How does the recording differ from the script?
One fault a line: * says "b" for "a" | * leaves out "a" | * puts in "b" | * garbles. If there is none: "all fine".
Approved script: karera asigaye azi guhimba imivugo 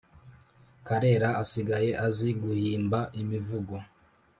all fine